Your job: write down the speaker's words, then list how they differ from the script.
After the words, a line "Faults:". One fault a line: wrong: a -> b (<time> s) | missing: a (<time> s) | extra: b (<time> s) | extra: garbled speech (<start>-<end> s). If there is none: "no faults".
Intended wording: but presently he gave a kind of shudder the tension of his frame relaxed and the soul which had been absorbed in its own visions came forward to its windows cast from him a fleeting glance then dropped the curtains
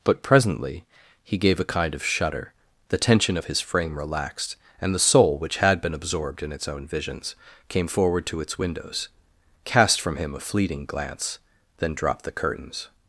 but presently he gave a kind of shudder the tension of his frame relaxed and the soul which had been absorbed in its own visions came forward to its windows cast from him a fleeting glance then dropped the curtains
Faults:
no faults